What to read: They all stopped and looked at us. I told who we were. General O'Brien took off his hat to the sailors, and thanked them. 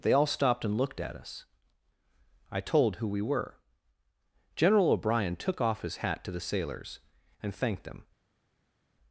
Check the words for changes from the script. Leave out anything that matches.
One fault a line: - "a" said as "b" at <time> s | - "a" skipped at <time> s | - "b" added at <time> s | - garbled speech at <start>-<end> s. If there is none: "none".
none